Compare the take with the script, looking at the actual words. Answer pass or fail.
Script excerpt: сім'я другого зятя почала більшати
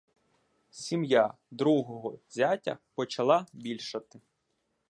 pass